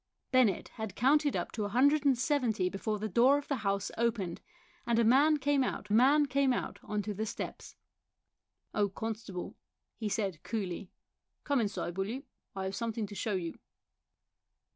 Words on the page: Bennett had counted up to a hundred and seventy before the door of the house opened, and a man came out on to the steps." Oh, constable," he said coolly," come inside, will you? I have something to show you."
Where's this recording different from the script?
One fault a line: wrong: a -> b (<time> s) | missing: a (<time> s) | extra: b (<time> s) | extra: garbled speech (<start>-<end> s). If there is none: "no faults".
extra: man came out (5.9 s)